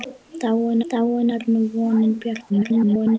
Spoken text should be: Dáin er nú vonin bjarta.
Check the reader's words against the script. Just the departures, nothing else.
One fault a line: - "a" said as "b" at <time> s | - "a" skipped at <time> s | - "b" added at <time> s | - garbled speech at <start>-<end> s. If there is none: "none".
- "dáin" added at 0.9 s
- garbled speech at 2.5-3.2 s